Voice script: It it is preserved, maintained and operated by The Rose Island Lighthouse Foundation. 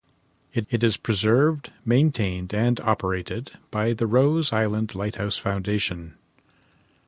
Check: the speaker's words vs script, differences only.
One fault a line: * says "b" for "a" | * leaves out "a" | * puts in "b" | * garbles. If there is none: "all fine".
all fine